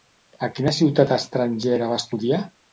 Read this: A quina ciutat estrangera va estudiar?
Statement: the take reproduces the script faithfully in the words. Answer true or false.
true